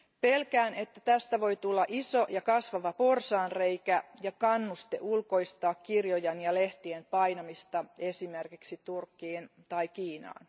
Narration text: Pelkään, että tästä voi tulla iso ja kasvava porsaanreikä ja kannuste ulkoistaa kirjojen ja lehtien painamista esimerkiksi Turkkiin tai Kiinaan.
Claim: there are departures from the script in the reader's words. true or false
false